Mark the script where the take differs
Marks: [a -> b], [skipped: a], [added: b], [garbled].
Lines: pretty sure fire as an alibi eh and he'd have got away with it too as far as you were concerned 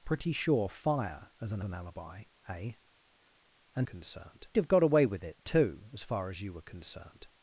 pretty sure fire as an [added: an] alibi eh and [he'd -> concerned] have got away with it too as far as you were concerned